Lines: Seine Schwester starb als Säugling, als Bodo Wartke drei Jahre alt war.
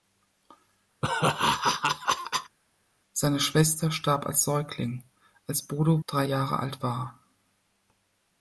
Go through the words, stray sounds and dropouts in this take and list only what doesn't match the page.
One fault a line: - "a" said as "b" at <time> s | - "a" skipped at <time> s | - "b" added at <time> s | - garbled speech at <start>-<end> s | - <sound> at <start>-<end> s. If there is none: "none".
- laugh at 1.0-2.6 s
- "Wartke" skipped at 6.0 s